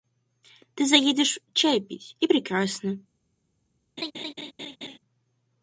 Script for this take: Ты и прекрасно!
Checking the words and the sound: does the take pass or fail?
fail